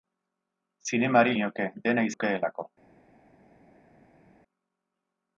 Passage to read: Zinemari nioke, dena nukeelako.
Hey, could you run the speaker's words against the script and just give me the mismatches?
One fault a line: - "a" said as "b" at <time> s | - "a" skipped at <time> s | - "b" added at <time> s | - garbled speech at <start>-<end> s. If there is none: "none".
none